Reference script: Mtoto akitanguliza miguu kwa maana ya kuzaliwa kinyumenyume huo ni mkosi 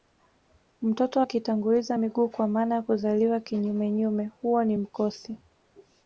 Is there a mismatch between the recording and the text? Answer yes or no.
no